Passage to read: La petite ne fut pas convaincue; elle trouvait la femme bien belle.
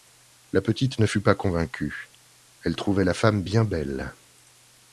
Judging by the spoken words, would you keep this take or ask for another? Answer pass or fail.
pass